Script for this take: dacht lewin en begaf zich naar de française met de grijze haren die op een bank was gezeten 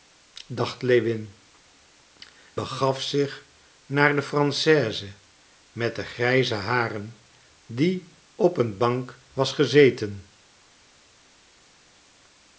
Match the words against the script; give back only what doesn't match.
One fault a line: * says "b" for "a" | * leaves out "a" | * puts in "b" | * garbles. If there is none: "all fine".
* leaves out "en"